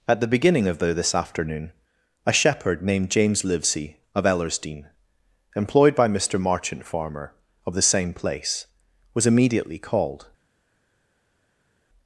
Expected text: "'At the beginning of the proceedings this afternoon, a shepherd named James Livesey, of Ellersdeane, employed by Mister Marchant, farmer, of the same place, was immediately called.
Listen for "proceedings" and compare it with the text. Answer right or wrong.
wrong